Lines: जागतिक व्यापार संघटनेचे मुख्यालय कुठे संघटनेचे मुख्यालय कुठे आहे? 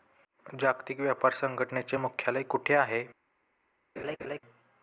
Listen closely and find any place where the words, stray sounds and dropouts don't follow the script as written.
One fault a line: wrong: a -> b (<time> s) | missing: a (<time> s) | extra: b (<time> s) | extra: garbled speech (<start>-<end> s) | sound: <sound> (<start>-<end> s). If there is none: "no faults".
missing: संघटनेचे मुख्यालय कुठे (2.7 s)
sound: laugh (4.0-4.4 s)